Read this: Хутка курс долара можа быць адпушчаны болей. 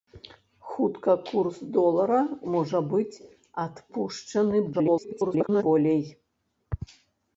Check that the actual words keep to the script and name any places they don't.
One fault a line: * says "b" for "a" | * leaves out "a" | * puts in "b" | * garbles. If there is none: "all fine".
* garbles